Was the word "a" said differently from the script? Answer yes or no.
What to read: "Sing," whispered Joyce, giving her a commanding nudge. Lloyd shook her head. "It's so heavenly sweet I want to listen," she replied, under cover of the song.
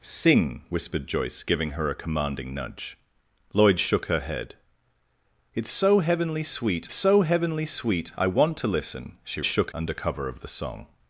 no